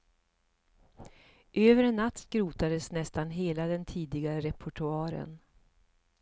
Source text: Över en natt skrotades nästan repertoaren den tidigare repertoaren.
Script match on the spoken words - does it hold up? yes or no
no